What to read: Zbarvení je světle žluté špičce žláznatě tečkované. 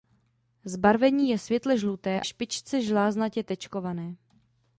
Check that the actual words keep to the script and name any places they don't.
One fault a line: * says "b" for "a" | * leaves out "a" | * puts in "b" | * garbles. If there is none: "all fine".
all fine